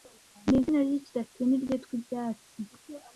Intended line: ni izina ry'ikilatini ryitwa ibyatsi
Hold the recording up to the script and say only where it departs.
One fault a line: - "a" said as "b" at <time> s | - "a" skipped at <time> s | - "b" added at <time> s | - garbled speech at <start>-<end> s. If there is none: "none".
none